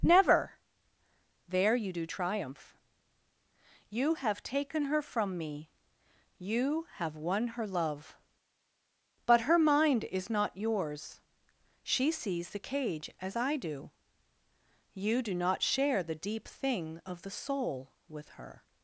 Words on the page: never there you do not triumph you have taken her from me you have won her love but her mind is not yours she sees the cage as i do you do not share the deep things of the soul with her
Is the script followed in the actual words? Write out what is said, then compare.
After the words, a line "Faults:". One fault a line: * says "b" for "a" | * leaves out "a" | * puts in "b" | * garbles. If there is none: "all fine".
never there you do triumph you have taken her from me you have won her love but her mind is not yours she sees the cage as i do you do not share the deep thing of the soul with her
Faults:
* leaves out "not"
* says "thing" for "things"